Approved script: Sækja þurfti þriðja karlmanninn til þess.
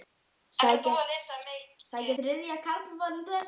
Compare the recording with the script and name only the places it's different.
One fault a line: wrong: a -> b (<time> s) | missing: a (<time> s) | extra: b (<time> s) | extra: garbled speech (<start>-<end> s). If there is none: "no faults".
missing: þurfti (2.1 s)
missing: til (3.3 s)